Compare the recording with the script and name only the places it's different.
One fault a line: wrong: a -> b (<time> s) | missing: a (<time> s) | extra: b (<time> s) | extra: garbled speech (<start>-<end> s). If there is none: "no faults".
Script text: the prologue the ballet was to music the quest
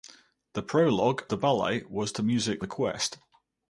no faults